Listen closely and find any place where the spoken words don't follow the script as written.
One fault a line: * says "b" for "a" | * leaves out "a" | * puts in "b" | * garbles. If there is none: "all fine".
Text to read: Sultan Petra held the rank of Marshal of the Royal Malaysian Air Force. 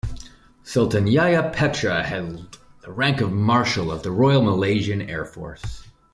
* puts in "Yahya"